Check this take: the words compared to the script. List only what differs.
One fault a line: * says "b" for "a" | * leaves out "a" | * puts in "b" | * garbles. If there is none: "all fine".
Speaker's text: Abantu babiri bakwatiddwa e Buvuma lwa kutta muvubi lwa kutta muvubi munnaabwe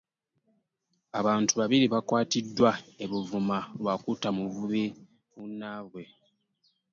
* leaves out "lwa kutta muvubi"